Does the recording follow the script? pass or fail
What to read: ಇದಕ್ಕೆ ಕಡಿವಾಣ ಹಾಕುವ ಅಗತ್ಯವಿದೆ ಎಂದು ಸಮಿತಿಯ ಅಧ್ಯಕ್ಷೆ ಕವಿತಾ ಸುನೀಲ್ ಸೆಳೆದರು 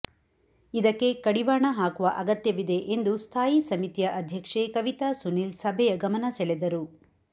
fail